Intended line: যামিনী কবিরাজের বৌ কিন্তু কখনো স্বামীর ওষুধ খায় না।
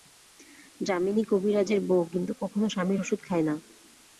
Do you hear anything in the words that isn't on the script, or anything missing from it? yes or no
no